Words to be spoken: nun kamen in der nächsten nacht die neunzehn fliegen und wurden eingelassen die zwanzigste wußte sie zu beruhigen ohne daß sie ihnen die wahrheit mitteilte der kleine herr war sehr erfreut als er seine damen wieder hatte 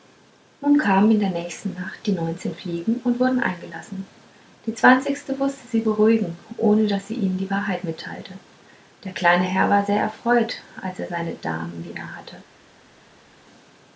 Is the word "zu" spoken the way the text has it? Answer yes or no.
no